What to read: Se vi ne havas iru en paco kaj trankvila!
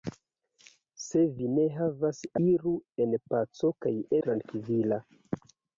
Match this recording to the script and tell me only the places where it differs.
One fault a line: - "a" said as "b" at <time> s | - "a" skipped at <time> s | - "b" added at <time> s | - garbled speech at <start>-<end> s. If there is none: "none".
none